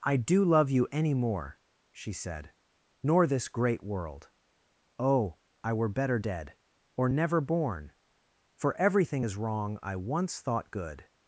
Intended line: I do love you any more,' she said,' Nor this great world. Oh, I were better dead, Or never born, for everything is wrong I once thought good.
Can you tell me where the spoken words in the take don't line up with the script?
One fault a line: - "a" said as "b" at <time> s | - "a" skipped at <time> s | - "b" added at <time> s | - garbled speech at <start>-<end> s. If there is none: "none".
none